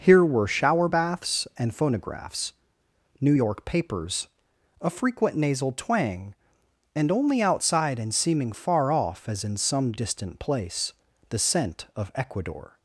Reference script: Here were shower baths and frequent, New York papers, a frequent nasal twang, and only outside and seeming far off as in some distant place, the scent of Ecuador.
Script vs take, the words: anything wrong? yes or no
yes